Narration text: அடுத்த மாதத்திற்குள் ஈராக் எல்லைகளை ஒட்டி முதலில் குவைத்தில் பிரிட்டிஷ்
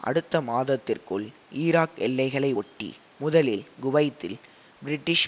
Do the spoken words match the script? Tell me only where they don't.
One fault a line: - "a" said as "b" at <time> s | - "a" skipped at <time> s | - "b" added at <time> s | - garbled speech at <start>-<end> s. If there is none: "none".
none